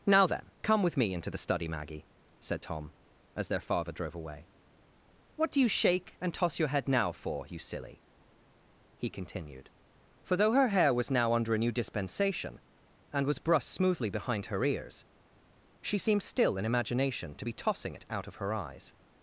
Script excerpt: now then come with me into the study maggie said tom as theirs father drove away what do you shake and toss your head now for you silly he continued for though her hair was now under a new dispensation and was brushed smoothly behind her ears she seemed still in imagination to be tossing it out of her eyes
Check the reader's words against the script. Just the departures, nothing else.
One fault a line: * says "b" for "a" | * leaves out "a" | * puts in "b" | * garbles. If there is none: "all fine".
* says "their" for "theirs"